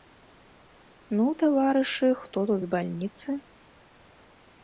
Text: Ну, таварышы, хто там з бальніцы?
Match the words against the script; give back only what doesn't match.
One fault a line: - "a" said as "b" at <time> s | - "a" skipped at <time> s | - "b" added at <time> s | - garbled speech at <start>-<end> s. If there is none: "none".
- "там" said as "тут" at 2.5 s